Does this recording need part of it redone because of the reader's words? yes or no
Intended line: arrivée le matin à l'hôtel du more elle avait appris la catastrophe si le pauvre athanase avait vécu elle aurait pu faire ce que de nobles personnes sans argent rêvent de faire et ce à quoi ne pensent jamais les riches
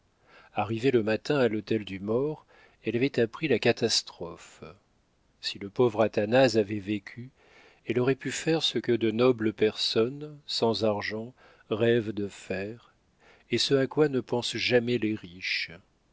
no